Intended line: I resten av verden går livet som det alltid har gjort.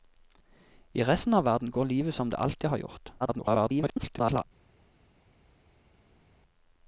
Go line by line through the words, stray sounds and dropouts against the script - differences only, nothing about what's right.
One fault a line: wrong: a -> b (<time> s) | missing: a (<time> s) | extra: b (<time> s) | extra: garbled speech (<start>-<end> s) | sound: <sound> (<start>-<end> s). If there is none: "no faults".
extra: garbled speech (3.2-4.4 s)